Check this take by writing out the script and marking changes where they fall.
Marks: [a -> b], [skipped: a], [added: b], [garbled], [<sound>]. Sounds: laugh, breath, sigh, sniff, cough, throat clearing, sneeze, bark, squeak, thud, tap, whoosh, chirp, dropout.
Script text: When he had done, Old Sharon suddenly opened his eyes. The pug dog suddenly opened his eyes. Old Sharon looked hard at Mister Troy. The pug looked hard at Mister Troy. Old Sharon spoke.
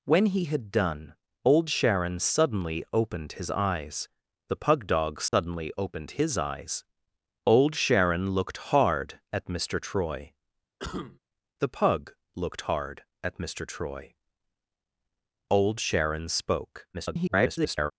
When he had done, Old Sharon suddenly opened his eyes. The pug dog suddenly [dropout] opened his eyes. Old Sharon looked hard at Mister Troy. [cough] The pug looked hard at Mister Troy. Old Sharon spoke. [garbled]